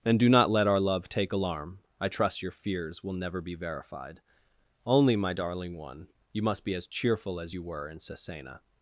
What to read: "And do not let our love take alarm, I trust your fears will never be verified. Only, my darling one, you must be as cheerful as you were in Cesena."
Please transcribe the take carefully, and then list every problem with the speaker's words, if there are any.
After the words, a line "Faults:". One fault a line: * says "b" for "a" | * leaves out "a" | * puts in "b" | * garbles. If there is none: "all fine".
"And do not let our love take alarm, I trust your fears will never be verified. Only, my darling one, you must be as cheerful as you were in Cesena."
Faults:
all fine